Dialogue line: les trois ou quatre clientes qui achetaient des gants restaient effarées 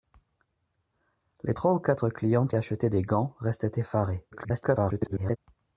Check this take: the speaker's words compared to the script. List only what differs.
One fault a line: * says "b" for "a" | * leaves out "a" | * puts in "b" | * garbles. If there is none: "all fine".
* leaves out "qui"
* garbles